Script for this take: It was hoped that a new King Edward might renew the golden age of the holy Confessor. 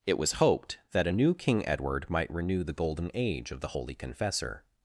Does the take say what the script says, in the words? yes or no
yes